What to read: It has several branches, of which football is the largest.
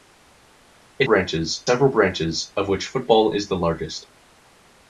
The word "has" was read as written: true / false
false